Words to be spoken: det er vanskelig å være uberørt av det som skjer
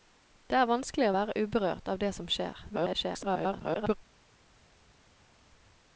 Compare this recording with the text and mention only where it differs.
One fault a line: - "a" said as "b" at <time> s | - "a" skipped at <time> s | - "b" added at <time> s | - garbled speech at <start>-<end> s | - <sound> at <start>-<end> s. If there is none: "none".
- garbled speech at 2.7-4.0 s